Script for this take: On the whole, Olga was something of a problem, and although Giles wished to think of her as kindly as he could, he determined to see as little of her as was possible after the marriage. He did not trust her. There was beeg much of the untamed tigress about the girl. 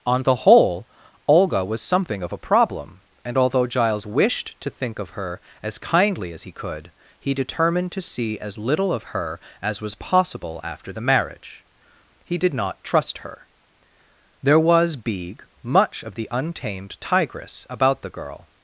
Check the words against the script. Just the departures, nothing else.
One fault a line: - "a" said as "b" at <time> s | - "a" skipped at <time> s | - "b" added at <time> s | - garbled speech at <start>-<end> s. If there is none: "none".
none